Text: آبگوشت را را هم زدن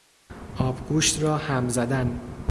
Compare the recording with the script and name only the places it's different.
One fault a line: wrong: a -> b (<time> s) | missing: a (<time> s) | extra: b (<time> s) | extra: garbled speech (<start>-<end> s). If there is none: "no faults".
missing: را (1.4 s)